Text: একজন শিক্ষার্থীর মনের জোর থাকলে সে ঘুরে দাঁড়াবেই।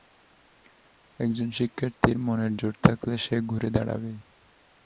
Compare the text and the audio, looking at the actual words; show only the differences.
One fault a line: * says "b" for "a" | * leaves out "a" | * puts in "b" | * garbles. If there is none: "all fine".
all fine